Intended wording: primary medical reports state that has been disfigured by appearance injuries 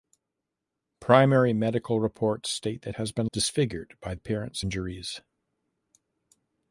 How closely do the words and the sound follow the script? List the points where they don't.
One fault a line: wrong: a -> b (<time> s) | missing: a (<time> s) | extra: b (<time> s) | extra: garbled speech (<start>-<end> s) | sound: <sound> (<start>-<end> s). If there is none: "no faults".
no faults